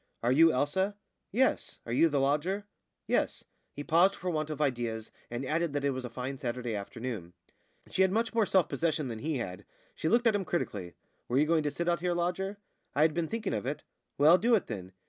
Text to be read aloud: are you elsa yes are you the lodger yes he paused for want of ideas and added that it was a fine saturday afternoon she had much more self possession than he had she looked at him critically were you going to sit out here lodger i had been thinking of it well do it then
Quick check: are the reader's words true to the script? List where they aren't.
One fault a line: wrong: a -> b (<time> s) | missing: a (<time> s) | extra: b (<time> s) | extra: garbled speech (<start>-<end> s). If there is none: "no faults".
no faults